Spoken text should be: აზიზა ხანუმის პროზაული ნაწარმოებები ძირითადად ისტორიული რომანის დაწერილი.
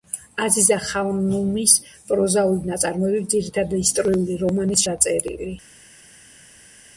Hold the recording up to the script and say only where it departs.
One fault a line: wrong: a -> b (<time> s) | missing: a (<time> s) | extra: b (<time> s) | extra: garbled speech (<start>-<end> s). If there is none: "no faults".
no faults